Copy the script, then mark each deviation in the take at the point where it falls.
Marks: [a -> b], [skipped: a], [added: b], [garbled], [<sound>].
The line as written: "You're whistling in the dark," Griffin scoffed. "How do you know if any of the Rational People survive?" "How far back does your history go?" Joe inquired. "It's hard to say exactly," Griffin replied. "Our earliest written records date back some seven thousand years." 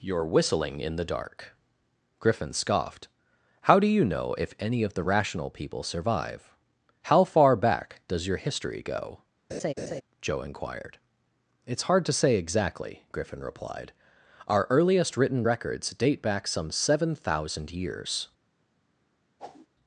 "You're whistling in the dark," Griffin scoffed. "How do you know if any of the Rational People survive?" "How far back does your history go?" [laugh] Joe inquired. "It's hard to say exactly," Griffin replied. "Our earliest written records date back some seven thousand years." [whoosh]